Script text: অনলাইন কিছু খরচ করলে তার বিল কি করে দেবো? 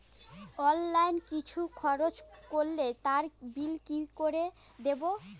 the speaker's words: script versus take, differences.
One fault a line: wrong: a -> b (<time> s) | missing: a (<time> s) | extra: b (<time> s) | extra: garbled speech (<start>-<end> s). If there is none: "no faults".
no faults